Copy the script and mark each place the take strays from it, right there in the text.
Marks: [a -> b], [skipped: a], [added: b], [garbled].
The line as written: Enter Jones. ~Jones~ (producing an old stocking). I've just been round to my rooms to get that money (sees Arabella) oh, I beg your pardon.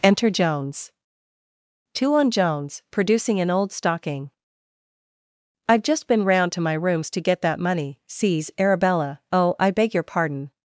Enter Jones. [added: two on] ~Jones~ (producing an old stocking). I've just been round to my rooms to get that money (sees Arabella) oh, I beg your pardon.